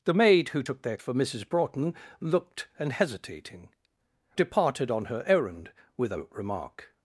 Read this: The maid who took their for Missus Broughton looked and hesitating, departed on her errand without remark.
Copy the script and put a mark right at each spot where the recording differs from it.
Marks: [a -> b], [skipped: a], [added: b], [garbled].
The maid who took their for Missus Broughton looked and hesitating, departed on her errand without remark.